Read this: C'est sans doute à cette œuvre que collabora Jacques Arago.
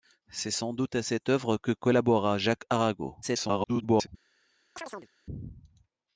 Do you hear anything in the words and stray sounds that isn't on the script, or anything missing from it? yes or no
yes